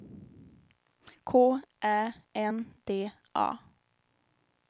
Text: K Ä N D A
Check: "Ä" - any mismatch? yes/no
no